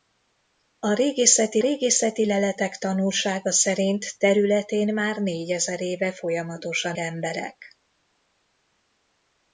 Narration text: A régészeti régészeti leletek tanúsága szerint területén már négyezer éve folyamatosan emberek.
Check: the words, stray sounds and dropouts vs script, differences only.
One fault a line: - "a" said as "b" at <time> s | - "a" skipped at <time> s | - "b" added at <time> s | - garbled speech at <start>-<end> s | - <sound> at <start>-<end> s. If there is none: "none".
none